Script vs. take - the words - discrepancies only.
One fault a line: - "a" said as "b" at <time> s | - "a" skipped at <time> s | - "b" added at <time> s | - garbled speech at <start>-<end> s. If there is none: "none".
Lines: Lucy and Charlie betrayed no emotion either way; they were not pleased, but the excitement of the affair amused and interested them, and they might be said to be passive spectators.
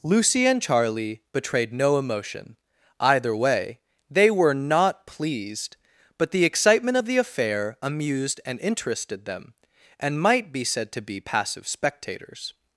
- "they" skipped at 10.2 s